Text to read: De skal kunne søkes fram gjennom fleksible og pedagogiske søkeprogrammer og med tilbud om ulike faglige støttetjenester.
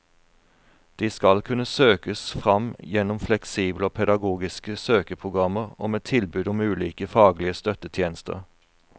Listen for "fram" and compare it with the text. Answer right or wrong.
right